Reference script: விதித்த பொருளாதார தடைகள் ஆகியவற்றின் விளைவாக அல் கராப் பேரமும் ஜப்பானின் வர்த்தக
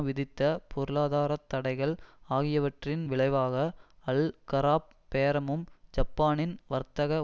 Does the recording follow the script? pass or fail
pass